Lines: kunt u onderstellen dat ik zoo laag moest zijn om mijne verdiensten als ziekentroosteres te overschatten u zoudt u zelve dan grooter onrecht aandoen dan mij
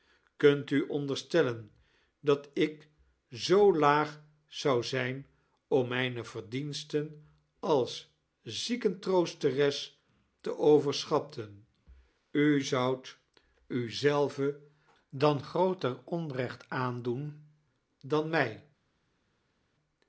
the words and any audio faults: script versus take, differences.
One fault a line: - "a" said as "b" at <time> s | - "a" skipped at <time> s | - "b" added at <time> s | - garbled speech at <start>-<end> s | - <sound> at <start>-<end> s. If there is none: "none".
- "moest" said as "zou" at 4.5 s